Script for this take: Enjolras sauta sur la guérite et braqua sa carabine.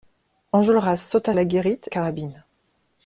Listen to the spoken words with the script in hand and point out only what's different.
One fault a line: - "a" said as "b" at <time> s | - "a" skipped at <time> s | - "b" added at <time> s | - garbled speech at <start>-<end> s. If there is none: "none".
- "sur" skipped at 1.4 s
- "et braqua sa" skipped at 1.9 s